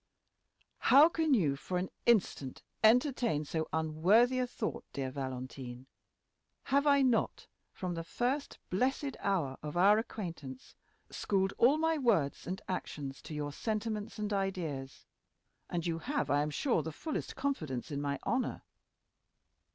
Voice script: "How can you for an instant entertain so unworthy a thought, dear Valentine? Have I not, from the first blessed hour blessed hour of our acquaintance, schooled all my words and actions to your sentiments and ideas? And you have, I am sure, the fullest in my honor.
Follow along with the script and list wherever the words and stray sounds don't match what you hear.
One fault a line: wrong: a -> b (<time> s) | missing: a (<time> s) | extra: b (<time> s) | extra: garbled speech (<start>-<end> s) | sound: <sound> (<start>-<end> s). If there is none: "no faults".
missing: blessed hour (9.6 s)
extra: confidence (17.4 s)